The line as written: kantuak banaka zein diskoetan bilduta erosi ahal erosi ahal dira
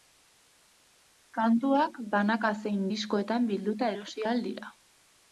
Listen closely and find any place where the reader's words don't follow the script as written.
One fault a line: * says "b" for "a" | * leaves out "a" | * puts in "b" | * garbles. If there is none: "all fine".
* leaves out "erosi ahal"